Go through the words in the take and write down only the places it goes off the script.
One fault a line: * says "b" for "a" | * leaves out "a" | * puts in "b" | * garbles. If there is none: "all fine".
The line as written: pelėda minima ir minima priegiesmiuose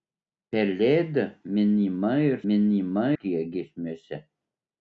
all fine